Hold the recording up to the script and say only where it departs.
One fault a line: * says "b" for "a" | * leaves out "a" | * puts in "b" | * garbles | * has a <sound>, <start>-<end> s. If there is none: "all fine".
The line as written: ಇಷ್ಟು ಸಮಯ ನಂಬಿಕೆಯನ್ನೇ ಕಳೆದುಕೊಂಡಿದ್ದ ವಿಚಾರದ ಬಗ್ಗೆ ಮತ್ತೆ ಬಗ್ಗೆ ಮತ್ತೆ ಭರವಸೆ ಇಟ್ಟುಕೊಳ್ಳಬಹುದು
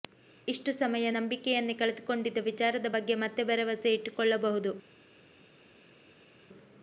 * leaves out "ಬಗ್ಗೆ ಮತ್ತೆ"